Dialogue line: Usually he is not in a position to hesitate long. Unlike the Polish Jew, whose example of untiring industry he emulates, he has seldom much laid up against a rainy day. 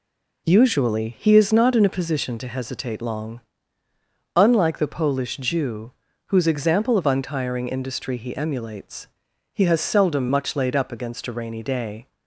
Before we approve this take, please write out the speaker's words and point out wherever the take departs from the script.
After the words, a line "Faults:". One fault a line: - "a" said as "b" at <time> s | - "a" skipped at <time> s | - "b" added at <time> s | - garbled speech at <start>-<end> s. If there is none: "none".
Usually he is not in a position to hesitate long. Unlike the Polish Jew, whose example of untiring industry he emulates, he has seldom much laid up against a rainy day.
Faults:
none